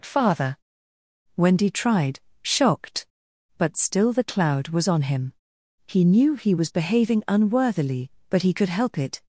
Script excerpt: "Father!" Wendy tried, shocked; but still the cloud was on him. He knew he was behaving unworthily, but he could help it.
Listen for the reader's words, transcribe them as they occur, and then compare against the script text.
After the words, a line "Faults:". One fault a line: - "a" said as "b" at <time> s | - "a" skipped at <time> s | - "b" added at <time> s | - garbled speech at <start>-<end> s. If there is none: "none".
"Father!" Wendy tried, shocked; but still the cloud was on him. He knew he was behaving unworthily, but he could help it.
Faults:
none